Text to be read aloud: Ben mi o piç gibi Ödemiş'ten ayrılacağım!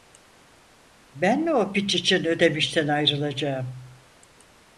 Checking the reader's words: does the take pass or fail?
fail